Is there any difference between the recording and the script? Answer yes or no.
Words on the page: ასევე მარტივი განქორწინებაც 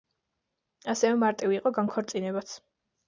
yes